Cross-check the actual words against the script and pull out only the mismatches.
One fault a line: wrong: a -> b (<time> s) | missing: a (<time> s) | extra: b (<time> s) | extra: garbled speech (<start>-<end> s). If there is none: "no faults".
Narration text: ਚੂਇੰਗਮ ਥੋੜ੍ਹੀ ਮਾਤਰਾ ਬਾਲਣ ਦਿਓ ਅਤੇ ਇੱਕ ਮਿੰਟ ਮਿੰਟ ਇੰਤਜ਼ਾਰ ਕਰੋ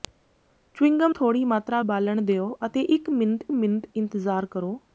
no faults